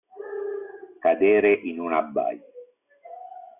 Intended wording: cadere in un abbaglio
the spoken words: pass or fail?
pass